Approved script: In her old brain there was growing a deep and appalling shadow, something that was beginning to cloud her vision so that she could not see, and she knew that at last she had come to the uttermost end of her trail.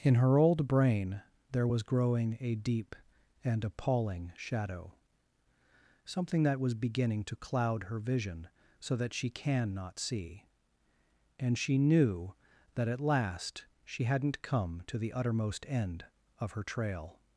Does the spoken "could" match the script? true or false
false